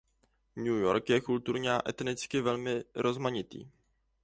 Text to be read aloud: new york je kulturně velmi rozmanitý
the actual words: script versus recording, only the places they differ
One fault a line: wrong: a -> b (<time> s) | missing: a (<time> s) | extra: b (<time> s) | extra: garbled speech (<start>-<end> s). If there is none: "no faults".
extra: a etnicky (1.7 s)